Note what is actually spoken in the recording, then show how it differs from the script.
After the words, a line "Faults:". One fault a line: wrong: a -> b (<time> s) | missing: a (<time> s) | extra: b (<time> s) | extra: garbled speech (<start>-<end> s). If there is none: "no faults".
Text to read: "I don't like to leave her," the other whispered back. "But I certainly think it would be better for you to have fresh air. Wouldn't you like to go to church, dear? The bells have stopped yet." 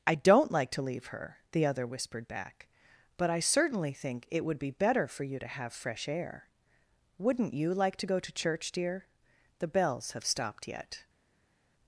"I don't like to leave her," the other whispered back. "But I certainly think it would be better for you to have fresh air. Wouldn't you like to go to church, dear? The bells have stopped yet."
Faults:
no faults